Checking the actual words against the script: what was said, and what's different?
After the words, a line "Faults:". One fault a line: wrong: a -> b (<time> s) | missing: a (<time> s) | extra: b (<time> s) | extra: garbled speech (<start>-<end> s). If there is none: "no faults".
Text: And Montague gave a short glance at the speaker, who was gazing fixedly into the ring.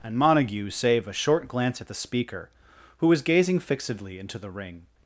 And Montague save a short glance at the speaker, who was gazing fixedly into the ring.
Faults:
wrong: gave -> save (0.7 s)